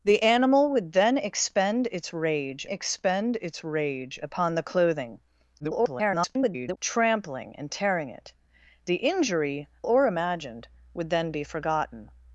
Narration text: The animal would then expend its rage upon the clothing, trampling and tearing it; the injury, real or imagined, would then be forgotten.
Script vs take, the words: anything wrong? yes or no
yes